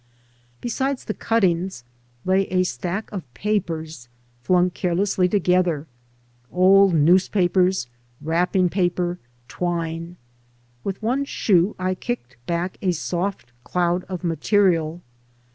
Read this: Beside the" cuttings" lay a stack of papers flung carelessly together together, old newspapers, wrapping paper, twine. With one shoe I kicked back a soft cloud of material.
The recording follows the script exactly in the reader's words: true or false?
false